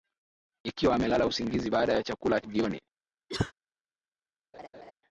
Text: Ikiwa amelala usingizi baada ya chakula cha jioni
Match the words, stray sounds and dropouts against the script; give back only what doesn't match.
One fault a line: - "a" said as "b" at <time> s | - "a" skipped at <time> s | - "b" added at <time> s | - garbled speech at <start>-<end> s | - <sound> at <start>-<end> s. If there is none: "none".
- "cha" skipped at 2.4 s
- cough at 3.3-3.5 s
- laugh at 4.5-4.9 s